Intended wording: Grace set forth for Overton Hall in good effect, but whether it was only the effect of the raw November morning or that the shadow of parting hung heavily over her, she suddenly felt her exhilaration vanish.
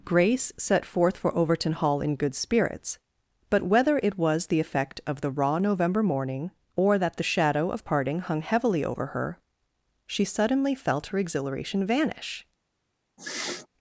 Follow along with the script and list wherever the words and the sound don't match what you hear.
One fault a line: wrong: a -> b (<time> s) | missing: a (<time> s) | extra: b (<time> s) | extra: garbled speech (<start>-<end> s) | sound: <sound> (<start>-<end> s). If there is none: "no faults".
wrong: effect -> spirits (2.3 s)
missing: only (4.5 s)
sound: sniff (13.2-13.7 s)